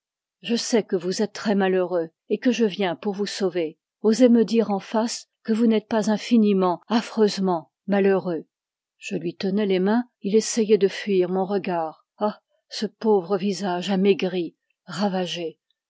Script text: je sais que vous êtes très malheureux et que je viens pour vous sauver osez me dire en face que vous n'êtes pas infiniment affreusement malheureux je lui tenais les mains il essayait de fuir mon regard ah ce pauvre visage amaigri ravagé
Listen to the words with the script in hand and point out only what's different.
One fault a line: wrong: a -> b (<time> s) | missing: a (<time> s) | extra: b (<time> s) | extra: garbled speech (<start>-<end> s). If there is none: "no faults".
no faults